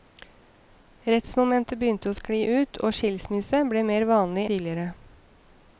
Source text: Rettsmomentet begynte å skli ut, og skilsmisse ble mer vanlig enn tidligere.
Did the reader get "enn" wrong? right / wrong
wrong